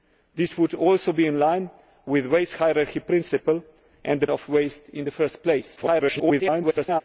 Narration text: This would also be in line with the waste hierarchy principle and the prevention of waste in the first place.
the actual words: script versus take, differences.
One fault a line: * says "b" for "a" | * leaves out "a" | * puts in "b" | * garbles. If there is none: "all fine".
* leaves out "prevention"
* garbles